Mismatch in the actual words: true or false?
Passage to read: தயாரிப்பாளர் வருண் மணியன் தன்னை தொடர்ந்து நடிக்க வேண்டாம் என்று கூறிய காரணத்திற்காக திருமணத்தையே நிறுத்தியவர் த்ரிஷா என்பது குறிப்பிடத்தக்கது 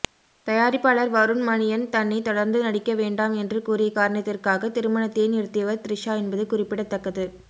false